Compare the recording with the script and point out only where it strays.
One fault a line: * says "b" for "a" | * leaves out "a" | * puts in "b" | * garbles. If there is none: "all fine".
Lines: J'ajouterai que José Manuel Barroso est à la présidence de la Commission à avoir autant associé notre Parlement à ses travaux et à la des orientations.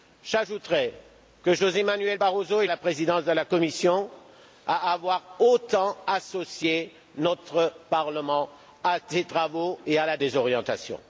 all fine